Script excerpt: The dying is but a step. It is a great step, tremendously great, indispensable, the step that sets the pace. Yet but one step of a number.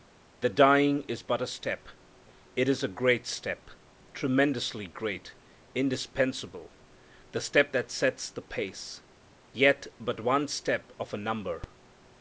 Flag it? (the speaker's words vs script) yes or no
no